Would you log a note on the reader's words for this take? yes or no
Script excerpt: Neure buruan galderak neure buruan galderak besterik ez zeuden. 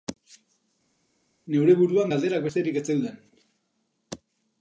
yes